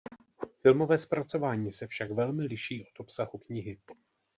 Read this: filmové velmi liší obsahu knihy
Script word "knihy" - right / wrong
right